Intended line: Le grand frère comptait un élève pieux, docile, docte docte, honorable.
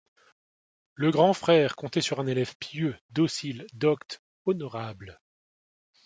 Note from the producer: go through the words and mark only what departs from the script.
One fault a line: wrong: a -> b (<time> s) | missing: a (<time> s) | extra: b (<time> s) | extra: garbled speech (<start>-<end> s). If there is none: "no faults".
extra: sur (2.0 s)
missing: docte (4.2 s)